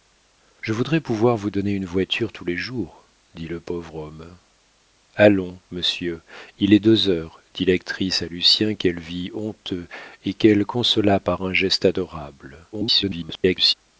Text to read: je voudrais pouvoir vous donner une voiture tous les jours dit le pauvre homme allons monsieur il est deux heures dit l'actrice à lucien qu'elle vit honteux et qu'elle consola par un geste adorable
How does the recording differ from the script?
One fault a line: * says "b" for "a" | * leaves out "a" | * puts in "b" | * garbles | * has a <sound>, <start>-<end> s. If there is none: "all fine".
* garbles